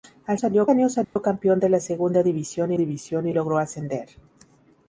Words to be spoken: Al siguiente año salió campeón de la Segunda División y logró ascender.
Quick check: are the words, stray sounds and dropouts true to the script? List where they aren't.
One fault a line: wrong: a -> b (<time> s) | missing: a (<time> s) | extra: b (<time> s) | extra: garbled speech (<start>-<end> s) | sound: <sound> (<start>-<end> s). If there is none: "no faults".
wrong: siguiente -> salió (0.4 s)
sound: dropout (1.0-1.2 s)
extra: División (2.7 s)